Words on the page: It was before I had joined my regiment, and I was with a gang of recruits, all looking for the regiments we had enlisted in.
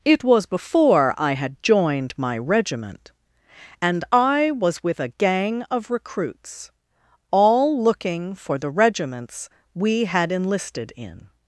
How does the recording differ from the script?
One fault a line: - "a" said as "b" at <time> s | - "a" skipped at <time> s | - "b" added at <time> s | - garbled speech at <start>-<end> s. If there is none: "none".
none